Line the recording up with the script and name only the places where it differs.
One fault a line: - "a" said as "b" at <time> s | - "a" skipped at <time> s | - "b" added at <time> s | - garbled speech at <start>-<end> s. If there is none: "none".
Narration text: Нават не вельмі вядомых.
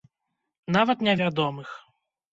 - "вельмі" skipped at 1.1 s